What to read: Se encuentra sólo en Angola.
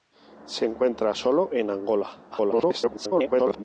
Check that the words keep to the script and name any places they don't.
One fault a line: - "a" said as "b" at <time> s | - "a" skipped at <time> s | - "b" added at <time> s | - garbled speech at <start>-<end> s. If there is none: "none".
- garbled speech at 2.3-3.6 s